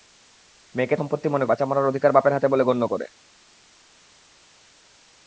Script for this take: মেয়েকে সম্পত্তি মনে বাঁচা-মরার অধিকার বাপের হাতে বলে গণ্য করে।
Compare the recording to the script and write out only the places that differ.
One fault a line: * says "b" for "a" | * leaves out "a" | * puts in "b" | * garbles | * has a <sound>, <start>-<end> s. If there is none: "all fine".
all fine